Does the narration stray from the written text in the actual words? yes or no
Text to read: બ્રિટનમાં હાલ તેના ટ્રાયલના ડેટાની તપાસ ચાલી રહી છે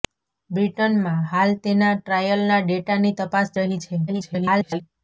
yes